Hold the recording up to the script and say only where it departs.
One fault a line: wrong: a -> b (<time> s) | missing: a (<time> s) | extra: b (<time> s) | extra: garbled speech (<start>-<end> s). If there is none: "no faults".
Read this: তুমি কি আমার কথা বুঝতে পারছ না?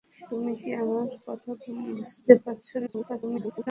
extra: garbled speech (2.9-3.7 s)